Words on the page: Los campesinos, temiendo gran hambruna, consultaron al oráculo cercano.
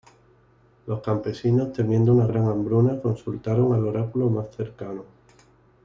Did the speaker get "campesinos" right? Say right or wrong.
right